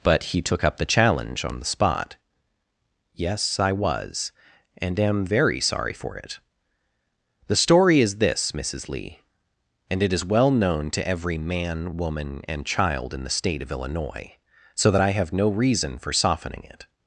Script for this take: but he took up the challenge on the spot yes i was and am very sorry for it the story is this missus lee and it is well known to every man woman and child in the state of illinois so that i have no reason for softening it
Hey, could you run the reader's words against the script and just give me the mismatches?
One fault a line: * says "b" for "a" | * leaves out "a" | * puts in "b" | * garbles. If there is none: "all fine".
all fine